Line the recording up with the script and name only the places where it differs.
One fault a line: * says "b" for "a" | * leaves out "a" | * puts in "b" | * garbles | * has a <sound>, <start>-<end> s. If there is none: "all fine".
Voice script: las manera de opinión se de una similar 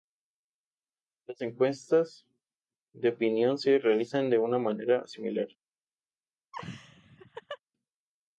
* says "encuestas" for "manera"
* puts in "realizan"
* puts in "manera"
* has a laugh, 6.5-7.6 s